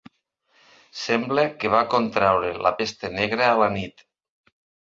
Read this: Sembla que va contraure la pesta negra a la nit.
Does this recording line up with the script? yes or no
yes